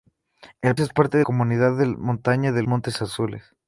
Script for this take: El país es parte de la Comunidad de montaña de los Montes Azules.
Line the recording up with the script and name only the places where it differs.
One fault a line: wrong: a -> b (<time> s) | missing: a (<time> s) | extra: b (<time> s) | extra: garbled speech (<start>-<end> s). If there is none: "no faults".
missing: país (0.8 s)
missing: la (1.3 s)
missing: los (2.6 s)